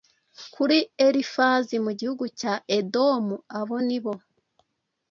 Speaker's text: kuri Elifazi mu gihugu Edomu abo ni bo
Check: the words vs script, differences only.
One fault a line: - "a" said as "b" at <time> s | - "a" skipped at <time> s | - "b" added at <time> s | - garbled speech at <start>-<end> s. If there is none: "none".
- "cya" added at 2.4 s